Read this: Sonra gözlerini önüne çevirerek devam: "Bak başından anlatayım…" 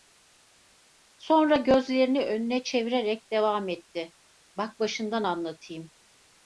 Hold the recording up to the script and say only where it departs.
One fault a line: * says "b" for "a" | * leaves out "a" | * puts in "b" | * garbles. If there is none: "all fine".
* puts in "etti"